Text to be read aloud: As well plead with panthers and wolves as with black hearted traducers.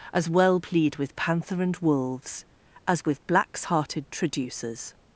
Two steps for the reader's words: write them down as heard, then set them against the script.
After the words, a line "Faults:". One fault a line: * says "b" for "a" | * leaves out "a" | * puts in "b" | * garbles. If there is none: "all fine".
As well plead with panther and wolves as with blacks hearted traducers.
Faults:
* says "panther" for "panthers"
* says "blacks" for "black"